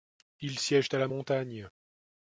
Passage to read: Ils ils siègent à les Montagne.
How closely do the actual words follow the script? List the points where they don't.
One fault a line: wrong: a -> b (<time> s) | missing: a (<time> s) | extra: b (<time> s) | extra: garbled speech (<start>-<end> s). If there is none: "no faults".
missing: ils (0.6 s)
wrong: les -> la (1.0 s)